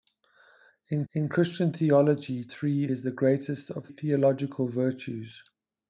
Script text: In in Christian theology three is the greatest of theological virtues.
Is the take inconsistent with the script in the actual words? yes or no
no